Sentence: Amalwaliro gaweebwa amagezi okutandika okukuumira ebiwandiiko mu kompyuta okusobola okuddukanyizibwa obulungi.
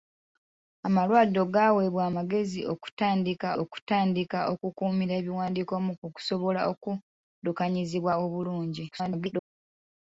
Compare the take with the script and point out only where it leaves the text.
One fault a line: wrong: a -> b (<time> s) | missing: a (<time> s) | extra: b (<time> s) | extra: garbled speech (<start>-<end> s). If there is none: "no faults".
extra: okutandika (3.6 s)
missing: kompyuta (5.9 s)
extra: garbled speech (8.9-9.5 s)